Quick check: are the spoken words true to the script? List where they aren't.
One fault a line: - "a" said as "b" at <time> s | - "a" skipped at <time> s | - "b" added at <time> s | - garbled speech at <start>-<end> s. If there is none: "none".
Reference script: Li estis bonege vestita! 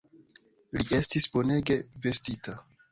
none